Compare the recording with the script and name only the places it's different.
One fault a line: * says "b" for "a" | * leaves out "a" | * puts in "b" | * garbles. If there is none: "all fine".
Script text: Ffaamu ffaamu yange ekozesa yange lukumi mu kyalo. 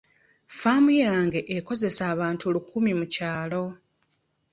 * leaves out "ffaamu"
* says "abantu" for "yange"